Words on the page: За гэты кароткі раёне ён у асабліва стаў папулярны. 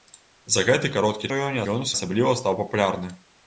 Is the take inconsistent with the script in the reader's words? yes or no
no